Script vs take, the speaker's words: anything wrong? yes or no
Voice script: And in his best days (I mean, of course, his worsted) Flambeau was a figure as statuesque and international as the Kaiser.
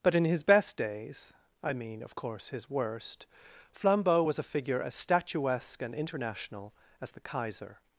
yes